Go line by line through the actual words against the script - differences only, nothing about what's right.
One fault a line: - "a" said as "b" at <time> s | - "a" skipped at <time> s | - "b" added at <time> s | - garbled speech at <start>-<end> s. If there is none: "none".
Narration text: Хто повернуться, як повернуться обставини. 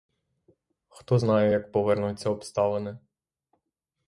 - "повернуться" said as "знає" at 1.2 s